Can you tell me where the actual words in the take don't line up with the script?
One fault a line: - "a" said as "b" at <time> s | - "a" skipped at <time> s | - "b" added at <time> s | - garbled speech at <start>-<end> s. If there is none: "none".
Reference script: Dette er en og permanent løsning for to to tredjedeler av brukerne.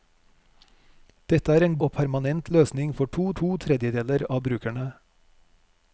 none